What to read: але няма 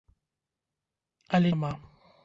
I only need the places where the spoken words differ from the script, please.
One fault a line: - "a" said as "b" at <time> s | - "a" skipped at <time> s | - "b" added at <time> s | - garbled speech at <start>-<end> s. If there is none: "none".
none